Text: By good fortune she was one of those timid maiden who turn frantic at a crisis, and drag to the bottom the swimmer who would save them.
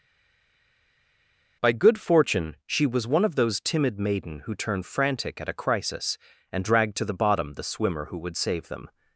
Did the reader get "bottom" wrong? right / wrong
right